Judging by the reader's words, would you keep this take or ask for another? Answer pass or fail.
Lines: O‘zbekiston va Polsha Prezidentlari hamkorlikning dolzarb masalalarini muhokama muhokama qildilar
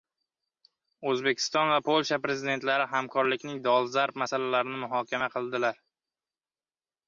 fail